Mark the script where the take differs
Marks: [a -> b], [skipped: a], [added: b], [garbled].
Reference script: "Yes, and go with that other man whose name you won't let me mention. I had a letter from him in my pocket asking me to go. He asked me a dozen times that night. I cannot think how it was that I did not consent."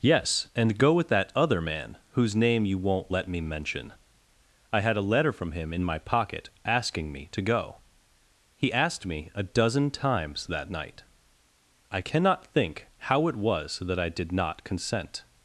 "Yes, and go with that other man whose name you won't let me mention. I had a letter from him in my pocket asking me to go. He asked me a dozen times that night. I cannot think how it was that I did not consent."